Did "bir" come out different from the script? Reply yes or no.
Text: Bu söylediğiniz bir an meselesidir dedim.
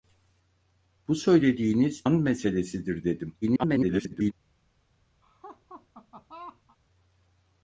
yes